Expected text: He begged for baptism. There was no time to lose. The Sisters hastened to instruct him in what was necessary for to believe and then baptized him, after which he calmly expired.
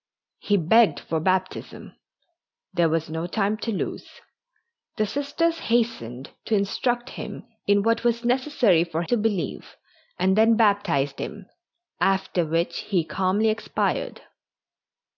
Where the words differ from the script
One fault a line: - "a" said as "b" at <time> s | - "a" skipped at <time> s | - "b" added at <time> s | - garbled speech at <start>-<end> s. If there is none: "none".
none